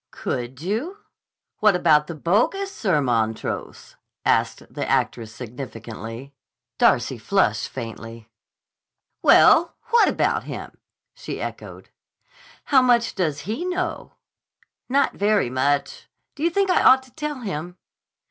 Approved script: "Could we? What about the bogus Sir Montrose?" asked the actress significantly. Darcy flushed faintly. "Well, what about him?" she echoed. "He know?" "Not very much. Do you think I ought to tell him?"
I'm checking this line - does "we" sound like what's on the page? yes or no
no